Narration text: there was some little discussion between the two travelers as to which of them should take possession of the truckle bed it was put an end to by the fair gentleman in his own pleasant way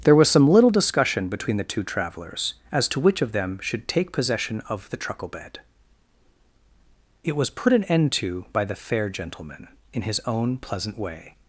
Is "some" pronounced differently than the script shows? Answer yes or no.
no